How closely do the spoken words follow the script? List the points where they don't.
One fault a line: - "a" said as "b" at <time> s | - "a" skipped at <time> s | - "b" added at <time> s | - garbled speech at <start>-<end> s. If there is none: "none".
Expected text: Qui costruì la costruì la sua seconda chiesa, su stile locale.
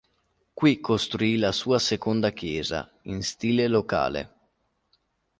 - "costruì la" skipped at 1.5 s
- "su" said as "in" at 3.0 s